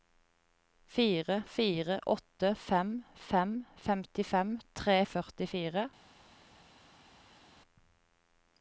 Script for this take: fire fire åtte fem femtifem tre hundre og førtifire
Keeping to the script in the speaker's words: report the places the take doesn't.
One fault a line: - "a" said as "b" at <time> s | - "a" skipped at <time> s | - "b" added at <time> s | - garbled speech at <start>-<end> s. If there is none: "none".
- "fem" added at 3.2 s
- "hundre" skipped at 5.0 s